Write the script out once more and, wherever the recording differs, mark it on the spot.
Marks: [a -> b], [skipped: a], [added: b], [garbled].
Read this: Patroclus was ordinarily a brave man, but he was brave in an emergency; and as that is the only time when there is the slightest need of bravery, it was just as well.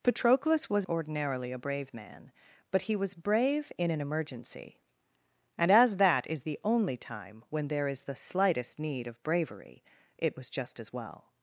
Patroclus was ordinarily a brave man, but he was brave in an emergency; and as that is the only time when there is the slightest need of bravery, it was just as well.